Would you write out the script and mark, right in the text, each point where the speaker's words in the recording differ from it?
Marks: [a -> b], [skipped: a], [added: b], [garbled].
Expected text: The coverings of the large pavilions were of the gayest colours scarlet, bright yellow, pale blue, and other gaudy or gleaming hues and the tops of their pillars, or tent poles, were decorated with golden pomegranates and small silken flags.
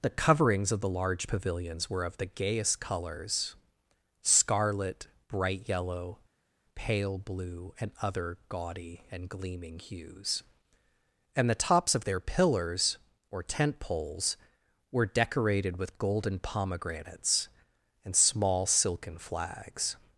The coverings of the large pavilions were of the gayest colours scarlet, bright yellow, pale blue, and other gaudy [or -> and] gleaming hues and the tops of their pillars, or tent poles, were decorated with golden pomegranates and small silken flags.